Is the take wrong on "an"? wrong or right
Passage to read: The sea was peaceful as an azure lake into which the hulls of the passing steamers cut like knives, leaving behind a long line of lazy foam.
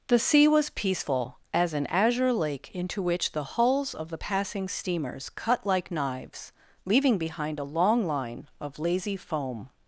right